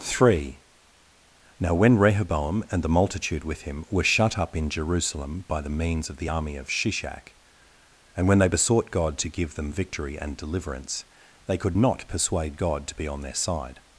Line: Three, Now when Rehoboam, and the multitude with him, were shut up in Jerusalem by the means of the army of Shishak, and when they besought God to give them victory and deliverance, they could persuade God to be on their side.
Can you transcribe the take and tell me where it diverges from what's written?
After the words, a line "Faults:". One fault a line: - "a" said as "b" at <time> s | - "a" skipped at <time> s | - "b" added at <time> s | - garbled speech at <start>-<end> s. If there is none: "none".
Three, Now when Rehoboam, and the multitude with him, were shut up in Jerusalem by the means of the army of Shishak, and when they besought God to give them victory and deliverance, they could not persuade God to be on their side.
Faults:
- "not" added at 11.7 s